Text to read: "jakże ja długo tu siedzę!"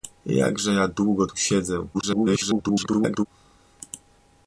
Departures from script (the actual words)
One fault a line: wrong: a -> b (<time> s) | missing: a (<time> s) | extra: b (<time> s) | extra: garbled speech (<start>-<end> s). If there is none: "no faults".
extra: garbled speech (1.9-3.3 s)